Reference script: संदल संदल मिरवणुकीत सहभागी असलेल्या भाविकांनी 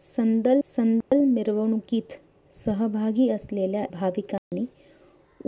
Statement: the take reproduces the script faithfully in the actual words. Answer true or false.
true